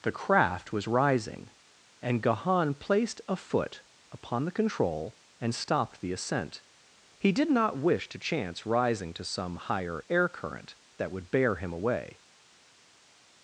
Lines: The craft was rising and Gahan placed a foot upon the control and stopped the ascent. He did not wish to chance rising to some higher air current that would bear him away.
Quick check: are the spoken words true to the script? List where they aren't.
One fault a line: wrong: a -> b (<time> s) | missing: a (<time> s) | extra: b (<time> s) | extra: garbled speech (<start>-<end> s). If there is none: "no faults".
no faults